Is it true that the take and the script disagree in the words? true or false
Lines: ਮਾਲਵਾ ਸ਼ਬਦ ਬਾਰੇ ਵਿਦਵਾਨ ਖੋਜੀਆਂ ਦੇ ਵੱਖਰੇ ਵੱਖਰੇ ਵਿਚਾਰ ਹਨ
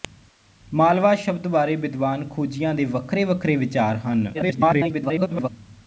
true